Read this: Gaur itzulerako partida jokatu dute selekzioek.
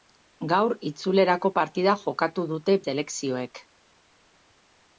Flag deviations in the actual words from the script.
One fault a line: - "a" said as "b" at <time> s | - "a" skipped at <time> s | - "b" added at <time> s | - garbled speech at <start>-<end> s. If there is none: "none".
none